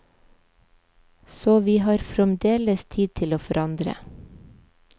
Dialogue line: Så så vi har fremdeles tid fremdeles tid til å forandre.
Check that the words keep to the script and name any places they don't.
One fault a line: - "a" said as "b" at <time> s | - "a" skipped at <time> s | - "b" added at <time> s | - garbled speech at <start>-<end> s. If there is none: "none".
- "så" skipped at 1.6 s
- "fremdeles tid" skipped at 3.1 s